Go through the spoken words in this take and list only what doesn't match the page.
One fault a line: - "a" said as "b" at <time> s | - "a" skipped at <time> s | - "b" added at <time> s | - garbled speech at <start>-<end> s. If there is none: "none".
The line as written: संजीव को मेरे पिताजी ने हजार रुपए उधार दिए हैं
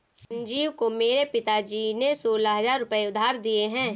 - "सोलह" added at 2.1 s